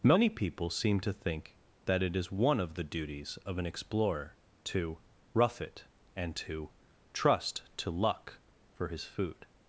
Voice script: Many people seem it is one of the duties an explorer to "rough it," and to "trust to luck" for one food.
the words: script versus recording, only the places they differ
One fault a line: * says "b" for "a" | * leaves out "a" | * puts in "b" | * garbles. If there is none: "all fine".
* puts in "to think that"
* puts in "of"
* says "his" for "one"